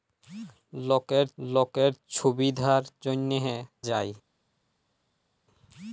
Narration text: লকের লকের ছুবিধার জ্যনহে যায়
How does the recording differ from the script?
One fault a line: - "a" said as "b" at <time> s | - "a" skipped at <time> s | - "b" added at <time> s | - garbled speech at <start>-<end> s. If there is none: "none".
none